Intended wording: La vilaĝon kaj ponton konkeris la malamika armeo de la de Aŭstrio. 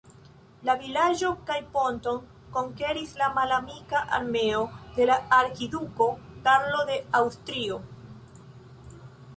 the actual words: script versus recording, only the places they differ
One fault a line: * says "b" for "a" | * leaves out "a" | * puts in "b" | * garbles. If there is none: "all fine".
* puts in "arkiduko Karlo"